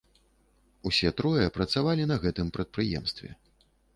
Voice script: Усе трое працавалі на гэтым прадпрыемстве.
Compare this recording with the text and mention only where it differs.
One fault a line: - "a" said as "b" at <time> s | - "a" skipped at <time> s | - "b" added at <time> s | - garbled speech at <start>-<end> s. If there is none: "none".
none